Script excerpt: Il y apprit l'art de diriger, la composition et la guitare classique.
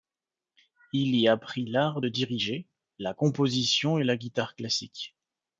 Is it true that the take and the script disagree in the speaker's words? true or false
false